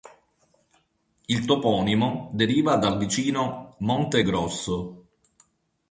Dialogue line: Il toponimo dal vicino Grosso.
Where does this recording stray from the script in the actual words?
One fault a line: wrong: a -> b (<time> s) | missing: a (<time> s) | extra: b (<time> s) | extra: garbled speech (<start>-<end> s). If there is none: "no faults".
extra: deriva (2.3 s)
extra: Monte (3.8 s)